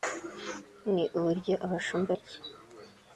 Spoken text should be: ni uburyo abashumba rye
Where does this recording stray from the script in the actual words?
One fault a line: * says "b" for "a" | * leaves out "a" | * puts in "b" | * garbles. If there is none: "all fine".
all fine